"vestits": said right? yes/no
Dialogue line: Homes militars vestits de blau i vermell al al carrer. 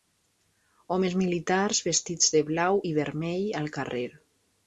yes